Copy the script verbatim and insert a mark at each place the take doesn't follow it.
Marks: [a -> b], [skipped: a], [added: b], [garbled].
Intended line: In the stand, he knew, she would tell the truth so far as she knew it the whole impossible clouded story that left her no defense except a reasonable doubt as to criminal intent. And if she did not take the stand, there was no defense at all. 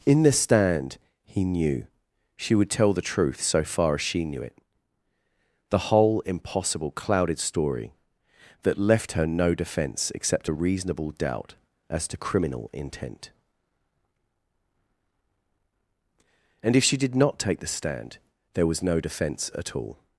In the stand, he knew, she would tell the truth so far as she knew it the whole impossible clouded story that left her no defense except a reasonable doubt as to criminal intent. And if she did not take the stand, there was no defense at all.